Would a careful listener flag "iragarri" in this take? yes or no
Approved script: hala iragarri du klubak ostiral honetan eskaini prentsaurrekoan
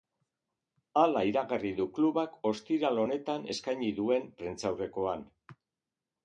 no